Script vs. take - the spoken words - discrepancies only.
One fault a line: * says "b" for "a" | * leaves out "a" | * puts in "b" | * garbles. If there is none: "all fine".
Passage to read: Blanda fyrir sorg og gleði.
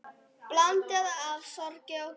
* says "af" for "fyrir"